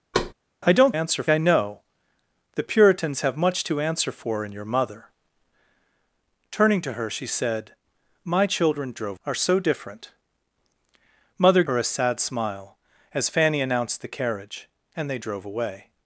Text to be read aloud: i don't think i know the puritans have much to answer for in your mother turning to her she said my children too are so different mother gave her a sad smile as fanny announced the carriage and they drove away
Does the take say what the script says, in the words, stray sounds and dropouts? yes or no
no